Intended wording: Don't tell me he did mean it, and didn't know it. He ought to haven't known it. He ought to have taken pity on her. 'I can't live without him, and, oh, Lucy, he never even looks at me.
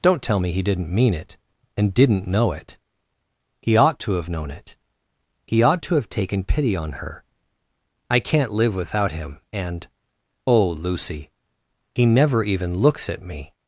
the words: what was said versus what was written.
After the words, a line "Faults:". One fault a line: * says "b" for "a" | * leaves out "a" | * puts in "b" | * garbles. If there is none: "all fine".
Don't tell me he didn't mean it, and didn't know it. He ought to have known it. He ought to have taken pity on her. 'I can't live without him, and, oh, Lucy, he never even looks at me.
Faults:
* says "didn't" for "did"
* says "have" for "haven't"